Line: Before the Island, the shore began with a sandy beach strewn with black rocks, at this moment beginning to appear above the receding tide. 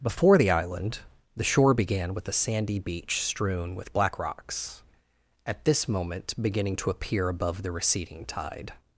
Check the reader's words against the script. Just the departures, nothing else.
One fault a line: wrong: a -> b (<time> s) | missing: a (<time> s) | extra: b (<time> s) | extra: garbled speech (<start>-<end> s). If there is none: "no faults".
no faults